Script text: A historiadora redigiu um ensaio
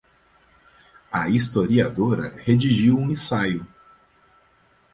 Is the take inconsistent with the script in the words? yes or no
no